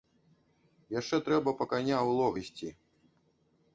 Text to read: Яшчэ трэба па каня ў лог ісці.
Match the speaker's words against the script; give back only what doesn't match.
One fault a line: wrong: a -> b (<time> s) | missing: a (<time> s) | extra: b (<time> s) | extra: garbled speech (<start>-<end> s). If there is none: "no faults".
no faults